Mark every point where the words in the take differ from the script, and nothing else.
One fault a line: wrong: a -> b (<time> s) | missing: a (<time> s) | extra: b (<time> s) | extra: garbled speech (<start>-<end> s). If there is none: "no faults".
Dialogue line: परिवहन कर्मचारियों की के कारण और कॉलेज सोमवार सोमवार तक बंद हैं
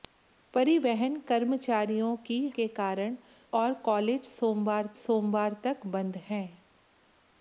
no faults